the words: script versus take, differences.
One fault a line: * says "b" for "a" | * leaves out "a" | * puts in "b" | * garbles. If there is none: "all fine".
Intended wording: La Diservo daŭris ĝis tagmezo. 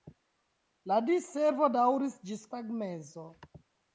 all fine